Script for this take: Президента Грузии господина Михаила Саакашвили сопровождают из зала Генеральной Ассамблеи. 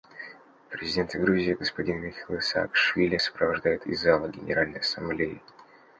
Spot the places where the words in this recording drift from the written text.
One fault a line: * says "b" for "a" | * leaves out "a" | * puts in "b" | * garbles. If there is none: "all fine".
all fine